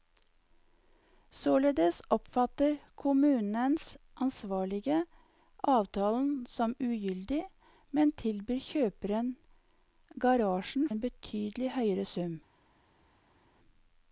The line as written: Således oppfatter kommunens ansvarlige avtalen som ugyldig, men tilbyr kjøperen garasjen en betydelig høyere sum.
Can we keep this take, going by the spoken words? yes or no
yes